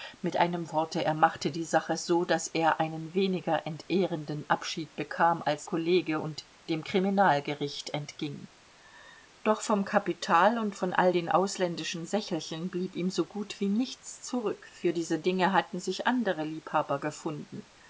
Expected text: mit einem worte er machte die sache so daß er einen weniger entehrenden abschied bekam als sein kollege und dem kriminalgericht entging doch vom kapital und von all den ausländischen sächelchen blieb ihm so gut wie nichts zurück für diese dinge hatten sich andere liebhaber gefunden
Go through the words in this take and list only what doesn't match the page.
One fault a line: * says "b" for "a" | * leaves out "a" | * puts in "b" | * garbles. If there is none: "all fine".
* leaves out "sein"